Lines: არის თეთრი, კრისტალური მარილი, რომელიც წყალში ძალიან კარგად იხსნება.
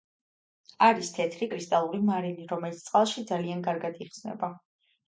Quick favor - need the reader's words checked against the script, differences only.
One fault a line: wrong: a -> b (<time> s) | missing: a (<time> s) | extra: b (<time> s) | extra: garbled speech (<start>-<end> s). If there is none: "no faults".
no faults